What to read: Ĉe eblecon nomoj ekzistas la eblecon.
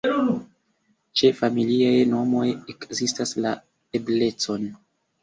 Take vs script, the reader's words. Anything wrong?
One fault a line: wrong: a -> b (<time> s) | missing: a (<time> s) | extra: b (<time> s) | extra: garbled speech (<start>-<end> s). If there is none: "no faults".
wrong: eblecon -> familiaj (1.4 s)